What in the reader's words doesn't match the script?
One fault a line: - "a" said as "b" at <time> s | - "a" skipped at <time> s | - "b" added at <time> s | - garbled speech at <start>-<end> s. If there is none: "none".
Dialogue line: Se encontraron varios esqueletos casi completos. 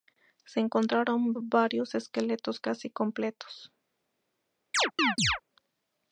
none